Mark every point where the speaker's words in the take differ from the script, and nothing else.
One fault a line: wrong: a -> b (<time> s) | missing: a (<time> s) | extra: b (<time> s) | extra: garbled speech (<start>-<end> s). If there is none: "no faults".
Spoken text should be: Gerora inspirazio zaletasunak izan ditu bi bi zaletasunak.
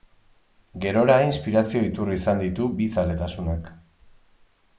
wrong: zaletasunak -> iturri (1.9 s)
missing: bi (2.9 s)